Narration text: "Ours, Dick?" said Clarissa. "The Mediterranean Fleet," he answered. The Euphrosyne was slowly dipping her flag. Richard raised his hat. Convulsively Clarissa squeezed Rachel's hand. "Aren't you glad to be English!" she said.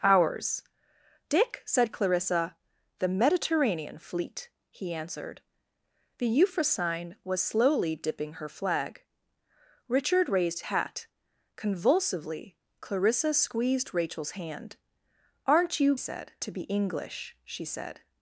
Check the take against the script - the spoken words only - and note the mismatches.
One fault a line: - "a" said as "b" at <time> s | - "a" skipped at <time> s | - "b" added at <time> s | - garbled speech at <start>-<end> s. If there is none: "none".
- "his" skipped at 10.6 s
- "glad" said as "said" at 16.0 s